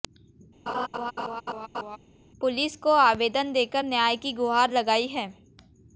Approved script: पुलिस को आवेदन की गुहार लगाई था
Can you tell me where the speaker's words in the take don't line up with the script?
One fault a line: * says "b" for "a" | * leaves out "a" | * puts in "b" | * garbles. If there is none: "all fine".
* puts in "देकर न्याय"
* says "है" for "था"